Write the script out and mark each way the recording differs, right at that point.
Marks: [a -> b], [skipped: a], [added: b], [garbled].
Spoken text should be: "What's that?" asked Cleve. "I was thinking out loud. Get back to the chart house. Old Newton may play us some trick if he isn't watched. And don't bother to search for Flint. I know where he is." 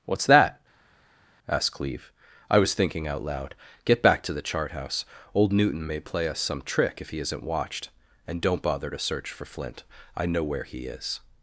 "What's that?" asked Cleve. "I was thinking out loud. Get back to the chart house. Old Newton may play us some trick if he isn't watched. And don't bother to search for Flint. I know where he is."